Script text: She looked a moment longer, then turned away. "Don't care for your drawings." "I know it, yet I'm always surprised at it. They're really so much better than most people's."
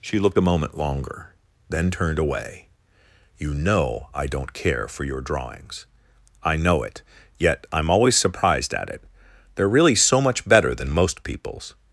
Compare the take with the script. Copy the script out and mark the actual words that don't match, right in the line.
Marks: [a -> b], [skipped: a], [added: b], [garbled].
She looked a moment longer, then turned away. [added: You know I] "Don't care for your drawings." "I know it, yet I'm always surprised at it. They're really so much better than most people's."